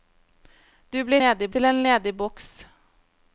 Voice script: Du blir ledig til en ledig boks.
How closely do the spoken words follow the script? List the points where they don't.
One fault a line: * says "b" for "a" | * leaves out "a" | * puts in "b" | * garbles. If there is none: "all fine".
all fine